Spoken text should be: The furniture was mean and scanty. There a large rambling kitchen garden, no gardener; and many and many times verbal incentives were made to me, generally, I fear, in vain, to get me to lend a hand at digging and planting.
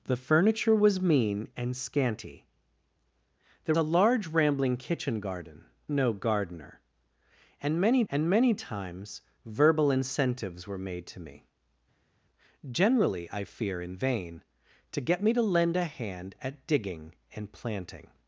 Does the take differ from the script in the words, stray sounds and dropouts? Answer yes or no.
no